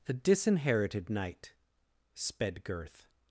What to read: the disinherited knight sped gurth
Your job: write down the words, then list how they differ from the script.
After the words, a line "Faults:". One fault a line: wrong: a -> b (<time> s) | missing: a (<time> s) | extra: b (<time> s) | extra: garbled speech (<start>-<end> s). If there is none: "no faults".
the disinherited knight sped gurth
Faults:
no faults